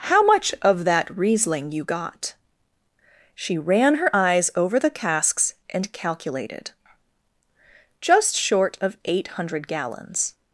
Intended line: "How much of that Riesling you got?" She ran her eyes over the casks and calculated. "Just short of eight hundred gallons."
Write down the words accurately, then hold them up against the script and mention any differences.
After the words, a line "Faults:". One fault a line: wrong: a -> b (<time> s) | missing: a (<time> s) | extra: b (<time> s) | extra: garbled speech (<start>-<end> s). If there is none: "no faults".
"How much of that Riesling you got?" She ran her eyes over the casks and calculated. "Just short of eight hundred gallons."
Faults:
no faults